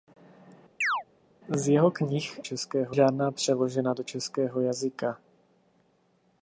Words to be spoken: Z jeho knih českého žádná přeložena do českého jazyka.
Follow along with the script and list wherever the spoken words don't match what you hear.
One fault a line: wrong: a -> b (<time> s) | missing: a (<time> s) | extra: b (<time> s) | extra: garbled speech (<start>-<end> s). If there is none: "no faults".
no faults